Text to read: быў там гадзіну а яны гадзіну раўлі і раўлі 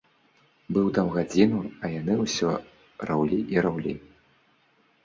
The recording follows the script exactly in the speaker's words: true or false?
false